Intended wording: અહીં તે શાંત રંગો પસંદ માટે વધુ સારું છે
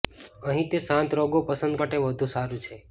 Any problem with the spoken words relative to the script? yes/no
no